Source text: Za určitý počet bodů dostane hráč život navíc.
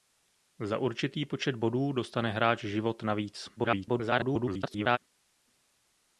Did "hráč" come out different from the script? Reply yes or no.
no